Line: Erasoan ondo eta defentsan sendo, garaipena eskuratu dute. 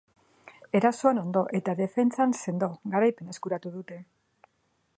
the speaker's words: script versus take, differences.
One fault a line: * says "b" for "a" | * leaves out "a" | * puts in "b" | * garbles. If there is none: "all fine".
all fine